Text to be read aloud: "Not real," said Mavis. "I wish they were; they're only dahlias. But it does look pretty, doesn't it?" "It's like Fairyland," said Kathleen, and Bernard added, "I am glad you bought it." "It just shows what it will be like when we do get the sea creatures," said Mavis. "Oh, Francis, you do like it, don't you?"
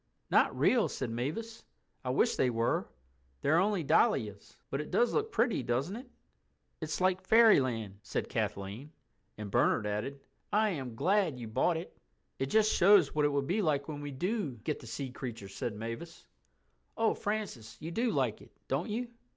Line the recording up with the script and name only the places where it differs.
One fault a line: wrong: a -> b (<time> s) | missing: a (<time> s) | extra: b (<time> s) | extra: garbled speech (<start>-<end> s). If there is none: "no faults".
no faults